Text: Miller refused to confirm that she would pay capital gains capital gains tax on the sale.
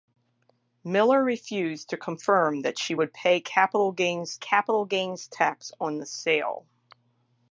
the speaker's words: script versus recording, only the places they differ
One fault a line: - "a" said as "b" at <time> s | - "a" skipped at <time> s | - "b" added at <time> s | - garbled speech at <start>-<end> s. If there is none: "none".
none